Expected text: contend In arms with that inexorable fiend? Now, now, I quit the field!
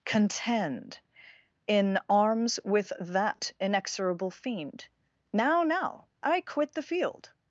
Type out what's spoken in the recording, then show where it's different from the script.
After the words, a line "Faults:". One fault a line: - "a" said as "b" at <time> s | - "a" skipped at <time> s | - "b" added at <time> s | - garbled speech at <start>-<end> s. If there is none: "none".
contend In arms with that inexorable fiend? Now, now, I quit the field!
Faults:
none